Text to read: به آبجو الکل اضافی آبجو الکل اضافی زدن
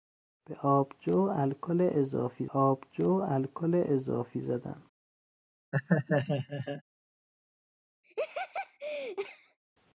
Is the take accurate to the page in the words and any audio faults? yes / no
no